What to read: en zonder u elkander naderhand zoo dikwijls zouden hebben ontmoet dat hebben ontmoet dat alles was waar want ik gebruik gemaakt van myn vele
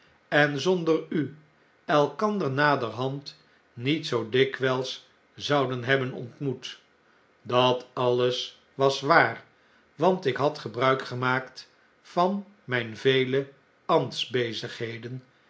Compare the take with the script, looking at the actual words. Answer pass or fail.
fail